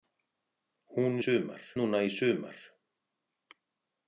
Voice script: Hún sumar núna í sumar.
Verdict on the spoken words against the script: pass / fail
pass